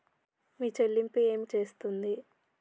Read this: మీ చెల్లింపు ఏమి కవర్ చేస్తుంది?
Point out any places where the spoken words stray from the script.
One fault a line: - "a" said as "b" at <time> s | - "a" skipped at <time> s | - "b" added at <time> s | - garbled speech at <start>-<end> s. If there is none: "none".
- "కవర్" skipped at 1.5 s